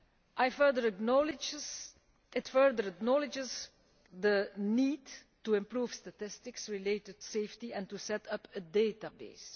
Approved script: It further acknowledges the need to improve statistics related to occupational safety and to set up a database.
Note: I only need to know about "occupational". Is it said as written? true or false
false